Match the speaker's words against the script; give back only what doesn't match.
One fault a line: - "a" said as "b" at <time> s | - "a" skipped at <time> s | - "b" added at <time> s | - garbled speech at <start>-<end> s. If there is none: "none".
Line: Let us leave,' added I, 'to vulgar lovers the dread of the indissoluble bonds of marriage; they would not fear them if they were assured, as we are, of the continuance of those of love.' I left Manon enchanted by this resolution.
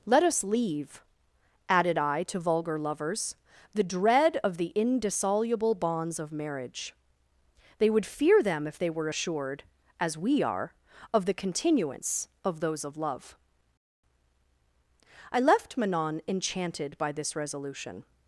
- "not" skipped at 8.1 s